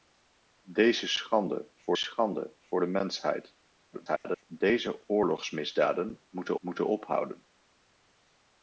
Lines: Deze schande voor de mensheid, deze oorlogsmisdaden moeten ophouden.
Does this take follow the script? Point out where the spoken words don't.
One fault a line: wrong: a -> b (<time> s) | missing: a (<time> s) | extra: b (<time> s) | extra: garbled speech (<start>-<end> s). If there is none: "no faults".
extra: schande voor (1.9 s)
extra: garbled speech (3.9-4.4 s)
extra: moeten (6.6 s)